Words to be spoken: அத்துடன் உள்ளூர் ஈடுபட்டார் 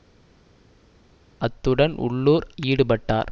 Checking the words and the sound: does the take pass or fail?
pass